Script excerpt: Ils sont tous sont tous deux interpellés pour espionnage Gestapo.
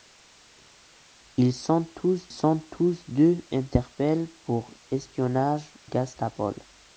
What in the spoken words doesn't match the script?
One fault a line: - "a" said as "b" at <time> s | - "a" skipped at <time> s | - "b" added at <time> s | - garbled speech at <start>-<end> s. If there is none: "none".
none